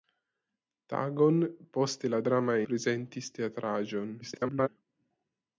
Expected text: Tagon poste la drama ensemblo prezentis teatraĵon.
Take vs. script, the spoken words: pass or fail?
fail